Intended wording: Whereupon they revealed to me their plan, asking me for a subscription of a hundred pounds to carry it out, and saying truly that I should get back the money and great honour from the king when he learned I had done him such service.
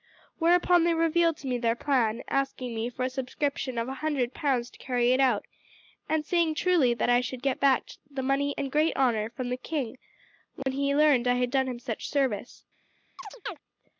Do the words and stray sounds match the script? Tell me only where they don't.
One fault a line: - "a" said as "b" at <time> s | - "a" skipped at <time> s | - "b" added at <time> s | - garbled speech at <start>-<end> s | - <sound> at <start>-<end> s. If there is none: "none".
- dropout at 10.6-10.7 s
- chirp at 13.2-13.6 s